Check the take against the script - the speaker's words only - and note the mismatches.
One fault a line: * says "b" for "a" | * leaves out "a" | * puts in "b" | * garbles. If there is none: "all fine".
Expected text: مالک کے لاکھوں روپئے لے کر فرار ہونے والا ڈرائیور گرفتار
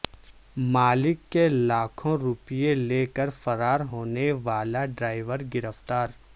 all fine